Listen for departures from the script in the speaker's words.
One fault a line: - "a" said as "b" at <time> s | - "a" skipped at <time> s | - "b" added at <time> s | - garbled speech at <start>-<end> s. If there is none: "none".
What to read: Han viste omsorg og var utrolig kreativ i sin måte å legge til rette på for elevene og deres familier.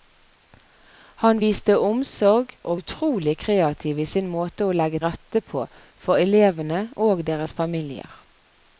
- "var" skipped at 2.8 s
- "til" skipped at 5.0 s